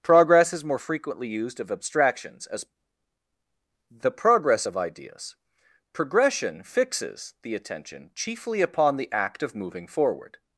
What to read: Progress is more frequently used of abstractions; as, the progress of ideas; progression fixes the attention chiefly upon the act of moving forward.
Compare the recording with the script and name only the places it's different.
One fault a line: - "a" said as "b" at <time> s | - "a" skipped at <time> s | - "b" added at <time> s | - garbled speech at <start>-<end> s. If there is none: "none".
none